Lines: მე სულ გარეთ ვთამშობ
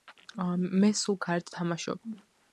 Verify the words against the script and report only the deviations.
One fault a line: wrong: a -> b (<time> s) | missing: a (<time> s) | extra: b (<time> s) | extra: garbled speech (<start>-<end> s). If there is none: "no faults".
no faults